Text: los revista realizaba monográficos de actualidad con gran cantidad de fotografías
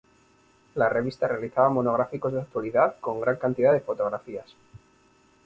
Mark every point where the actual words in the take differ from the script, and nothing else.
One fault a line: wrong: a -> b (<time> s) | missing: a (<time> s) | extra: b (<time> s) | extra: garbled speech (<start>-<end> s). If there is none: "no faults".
wrong: los -> la (0.7 s)